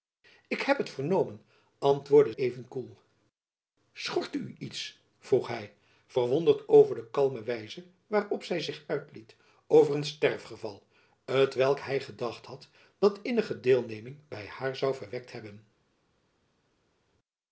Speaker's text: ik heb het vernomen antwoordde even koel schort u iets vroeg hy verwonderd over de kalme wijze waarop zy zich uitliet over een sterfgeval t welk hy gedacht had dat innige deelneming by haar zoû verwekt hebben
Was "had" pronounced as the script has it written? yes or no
yes